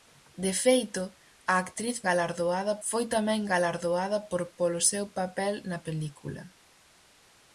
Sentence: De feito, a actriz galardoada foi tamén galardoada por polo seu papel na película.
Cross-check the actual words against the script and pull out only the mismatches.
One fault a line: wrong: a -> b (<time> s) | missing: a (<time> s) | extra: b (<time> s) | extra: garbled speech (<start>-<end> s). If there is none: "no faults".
no faults